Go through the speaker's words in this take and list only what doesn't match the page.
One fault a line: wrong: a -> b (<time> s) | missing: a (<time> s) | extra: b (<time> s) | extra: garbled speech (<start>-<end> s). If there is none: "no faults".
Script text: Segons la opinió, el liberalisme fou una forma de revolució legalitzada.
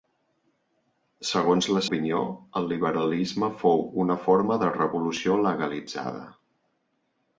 no faults